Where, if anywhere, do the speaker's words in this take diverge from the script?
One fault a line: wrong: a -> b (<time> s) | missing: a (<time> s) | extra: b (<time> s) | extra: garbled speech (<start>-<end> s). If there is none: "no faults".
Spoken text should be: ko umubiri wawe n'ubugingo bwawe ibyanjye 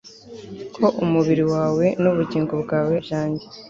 no faults